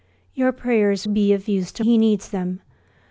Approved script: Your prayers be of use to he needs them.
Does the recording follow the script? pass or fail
pass